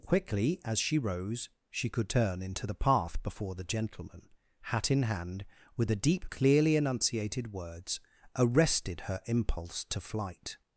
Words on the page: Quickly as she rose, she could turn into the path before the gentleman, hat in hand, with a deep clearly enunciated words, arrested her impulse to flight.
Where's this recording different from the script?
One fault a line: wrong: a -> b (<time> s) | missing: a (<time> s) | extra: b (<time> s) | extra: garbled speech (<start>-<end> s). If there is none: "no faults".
no faults